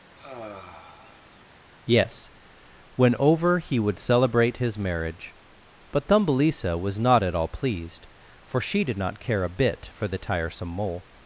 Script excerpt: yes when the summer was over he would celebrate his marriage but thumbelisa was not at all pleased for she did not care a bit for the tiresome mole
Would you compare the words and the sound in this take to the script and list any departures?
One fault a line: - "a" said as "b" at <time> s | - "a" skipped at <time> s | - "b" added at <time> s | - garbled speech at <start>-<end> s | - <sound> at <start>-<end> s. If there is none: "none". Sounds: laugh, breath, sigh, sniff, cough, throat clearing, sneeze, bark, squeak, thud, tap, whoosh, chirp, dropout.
- sigh at 0.2-1.5 s
- "the summer was" skipped at 3.1 s